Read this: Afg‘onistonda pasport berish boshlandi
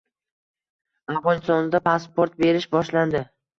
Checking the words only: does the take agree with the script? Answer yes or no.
yes